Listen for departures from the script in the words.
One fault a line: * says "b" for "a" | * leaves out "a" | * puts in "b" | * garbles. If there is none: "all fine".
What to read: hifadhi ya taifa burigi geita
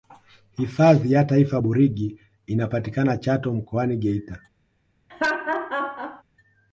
* puts in "inapatikana chato mkoani"